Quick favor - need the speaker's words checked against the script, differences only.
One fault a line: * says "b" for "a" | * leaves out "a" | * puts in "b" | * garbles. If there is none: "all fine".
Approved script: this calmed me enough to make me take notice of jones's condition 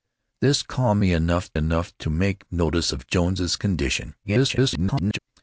* puts in "enough"
* leaves out "me take"
* garbles